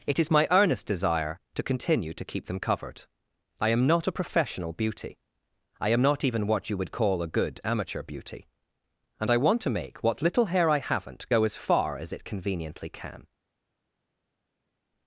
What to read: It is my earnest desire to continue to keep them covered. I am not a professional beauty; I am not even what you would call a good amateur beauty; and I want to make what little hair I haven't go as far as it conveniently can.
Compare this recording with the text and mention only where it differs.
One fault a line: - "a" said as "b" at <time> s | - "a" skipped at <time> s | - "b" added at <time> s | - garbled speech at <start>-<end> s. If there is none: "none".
none